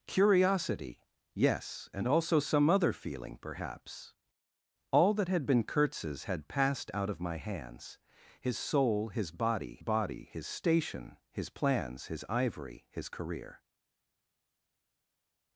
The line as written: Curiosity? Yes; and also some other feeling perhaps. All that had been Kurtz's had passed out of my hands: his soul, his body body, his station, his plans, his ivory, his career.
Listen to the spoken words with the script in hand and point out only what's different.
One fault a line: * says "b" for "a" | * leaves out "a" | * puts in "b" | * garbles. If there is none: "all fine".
all fine